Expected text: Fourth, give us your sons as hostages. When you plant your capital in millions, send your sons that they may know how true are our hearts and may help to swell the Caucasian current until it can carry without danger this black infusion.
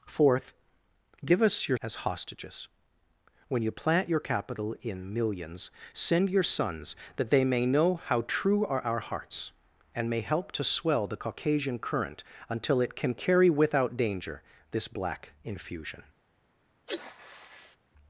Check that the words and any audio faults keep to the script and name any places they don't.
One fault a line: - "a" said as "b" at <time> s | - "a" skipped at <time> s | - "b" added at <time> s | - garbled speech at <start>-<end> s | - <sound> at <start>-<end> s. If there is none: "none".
- "sons" skipped at 1.8 s
- sneeze at 16.9-17.8 s